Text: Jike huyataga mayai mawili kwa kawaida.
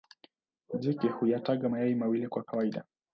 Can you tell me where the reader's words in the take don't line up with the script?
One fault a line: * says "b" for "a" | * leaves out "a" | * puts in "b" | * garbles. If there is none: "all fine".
all fine